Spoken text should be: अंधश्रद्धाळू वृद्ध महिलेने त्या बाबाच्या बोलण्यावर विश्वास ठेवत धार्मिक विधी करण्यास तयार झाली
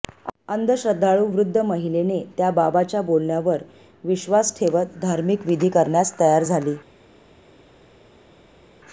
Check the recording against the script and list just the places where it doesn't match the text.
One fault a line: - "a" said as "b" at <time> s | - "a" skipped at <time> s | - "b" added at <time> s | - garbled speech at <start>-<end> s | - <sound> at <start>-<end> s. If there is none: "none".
none